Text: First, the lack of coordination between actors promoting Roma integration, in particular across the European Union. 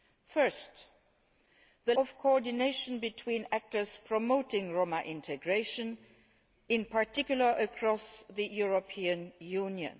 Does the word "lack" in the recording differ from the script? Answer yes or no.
yes